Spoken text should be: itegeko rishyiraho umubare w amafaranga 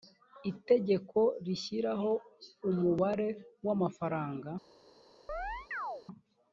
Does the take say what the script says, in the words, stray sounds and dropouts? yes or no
no